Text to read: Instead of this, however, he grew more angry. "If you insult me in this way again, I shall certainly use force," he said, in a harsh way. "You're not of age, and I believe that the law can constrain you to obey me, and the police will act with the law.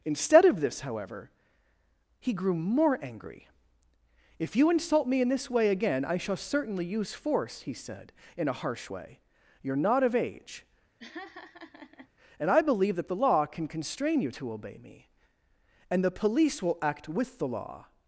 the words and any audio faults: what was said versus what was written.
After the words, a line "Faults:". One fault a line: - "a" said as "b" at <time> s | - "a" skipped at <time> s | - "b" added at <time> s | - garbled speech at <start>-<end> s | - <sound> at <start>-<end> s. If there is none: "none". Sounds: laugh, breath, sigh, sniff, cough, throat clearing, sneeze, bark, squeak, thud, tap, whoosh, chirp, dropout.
Instead of this, however, he grew more angry. "If you insult me in this way again, I shall certainly use force," he said, in a harsh way. "You're not of age, and I believe that the law can constrain you to obey me, and the police will act with the law.
Faults:
- laugh at 11.0-12.1 s